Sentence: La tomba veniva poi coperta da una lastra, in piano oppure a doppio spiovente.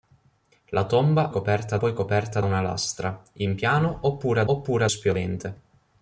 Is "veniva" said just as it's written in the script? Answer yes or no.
no